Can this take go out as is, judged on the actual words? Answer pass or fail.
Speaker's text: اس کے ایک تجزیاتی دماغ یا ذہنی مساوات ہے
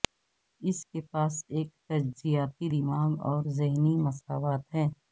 fail